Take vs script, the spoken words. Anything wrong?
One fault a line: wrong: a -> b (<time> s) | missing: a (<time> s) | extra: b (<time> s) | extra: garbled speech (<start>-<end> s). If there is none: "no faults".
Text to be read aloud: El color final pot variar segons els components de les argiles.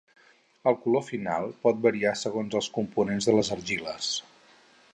no faults